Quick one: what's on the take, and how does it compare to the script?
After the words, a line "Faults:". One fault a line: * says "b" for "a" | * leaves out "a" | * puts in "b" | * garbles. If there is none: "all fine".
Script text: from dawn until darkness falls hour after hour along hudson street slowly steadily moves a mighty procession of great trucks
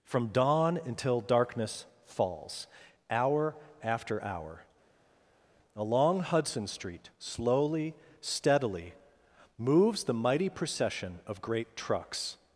from dawn until darkness falls hour after hour along hudson street slowly steadily moves the mighty procession of great trucks
Faults:
* says "the" for "a"